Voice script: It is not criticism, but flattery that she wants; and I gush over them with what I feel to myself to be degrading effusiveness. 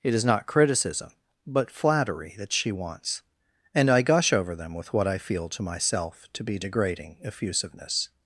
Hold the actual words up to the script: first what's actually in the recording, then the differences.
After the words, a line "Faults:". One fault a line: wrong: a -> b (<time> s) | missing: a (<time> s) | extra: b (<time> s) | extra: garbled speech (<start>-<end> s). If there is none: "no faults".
It is not criticism, but flattery that she wants; and I gush over them with what I feel to myself to be degrading effusiveness.
Faults:
no faults